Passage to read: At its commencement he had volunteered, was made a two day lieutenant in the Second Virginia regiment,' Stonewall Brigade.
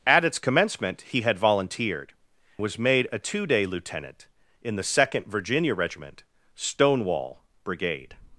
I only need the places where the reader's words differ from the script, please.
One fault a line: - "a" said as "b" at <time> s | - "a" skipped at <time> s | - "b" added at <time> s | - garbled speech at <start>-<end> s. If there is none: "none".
none